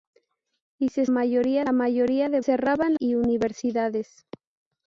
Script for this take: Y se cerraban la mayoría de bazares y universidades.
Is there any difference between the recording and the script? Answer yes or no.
yes